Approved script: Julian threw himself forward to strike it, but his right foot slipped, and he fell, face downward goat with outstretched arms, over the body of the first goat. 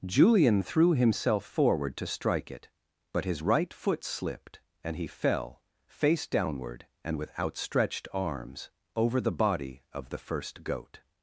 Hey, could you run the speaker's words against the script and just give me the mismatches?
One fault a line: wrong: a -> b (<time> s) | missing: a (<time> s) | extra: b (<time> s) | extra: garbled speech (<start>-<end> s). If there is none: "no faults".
wrong: goat -> and (7.0 s)